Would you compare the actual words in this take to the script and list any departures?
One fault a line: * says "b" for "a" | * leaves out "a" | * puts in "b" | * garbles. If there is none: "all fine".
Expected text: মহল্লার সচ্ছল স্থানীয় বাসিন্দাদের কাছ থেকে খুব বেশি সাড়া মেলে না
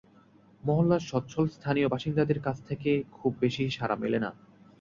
all fine